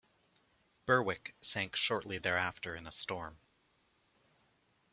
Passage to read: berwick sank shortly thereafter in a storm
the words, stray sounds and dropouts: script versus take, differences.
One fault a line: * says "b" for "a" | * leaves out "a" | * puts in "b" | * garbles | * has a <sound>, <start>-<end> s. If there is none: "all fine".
all fine